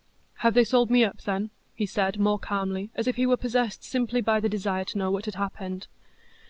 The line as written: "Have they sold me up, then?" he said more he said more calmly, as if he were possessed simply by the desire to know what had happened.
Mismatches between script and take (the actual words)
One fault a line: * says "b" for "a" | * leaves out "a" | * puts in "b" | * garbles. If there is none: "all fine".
* leaves out "he said more"